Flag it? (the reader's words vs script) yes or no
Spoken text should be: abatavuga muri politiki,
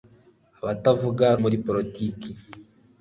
no